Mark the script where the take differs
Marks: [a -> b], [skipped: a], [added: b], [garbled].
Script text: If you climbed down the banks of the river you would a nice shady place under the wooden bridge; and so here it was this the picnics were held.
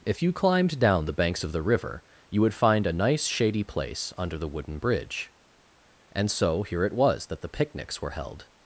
If you climbed down the banks of the river you would [added: find] a nice shady place under the wooden bridge; and so here it was [this -> that] the picnics were held.